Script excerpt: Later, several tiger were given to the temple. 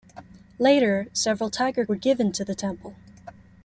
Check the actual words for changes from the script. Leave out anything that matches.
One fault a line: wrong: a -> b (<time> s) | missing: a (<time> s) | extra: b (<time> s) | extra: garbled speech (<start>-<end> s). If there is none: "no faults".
no faults